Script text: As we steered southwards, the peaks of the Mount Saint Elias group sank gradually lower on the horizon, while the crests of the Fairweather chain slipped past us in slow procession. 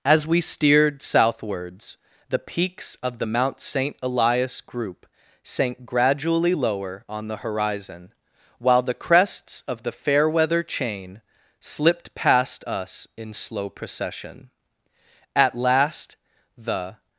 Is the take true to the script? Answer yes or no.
no